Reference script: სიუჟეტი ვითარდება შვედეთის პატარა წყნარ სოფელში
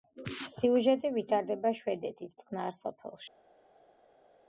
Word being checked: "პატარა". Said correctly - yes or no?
no